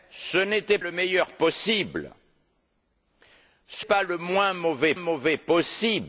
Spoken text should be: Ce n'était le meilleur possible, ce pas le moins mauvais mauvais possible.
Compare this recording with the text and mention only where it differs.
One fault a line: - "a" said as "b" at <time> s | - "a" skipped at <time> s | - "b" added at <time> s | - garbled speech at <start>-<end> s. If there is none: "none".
none